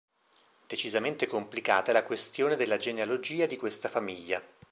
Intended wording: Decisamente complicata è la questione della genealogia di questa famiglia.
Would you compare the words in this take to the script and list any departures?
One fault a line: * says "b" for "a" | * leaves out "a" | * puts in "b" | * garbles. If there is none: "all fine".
all fine